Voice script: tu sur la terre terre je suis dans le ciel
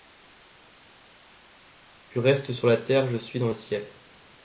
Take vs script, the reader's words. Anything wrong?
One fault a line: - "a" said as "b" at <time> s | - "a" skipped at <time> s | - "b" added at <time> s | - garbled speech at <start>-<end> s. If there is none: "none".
- "restes" added at 2.2 s
- "terre" skipped at 3.1 s